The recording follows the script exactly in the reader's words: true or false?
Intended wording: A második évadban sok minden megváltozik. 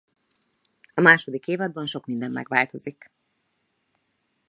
true